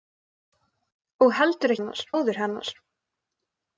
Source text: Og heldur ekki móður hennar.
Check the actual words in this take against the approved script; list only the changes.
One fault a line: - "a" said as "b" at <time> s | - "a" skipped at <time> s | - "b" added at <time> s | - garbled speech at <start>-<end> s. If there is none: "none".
- "ekki" said as "hennar" at 1.8 s